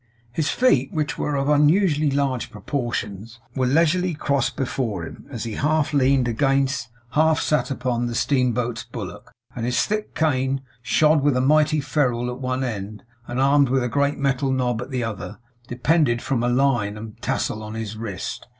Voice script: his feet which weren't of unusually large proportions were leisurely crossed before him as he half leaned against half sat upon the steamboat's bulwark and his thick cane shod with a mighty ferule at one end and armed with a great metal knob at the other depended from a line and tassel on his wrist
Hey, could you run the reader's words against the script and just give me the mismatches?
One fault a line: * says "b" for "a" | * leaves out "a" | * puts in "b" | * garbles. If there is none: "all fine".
* says "were" for "weren't"